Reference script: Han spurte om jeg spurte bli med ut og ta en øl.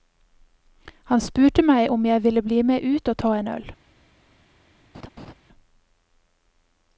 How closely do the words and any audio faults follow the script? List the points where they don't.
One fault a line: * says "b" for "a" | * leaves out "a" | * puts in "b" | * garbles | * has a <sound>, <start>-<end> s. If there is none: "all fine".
* puts in "meg"
* says "ville" for "spurte"
* has a laugh, 4.9-5.3 s